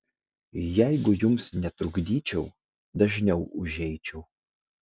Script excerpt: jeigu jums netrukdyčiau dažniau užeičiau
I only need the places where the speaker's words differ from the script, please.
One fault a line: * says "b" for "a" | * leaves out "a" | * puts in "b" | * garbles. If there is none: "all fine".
all fine